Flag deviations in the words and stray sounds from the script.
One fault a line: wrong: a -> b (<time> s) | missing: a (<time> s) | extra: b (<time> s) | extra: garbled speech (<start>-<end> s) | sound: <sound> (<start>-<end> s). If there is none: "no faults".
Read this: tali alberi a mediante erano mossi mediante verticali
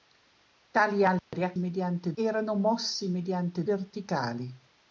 sound: dropout (1.2-1.3 s)